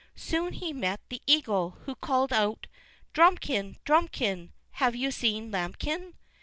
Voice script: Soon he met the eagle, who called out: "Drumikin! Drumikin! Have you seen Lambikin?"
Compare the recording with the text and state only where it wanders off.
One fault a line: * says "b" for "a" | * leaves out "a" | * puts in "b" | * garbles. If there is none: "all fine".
all fine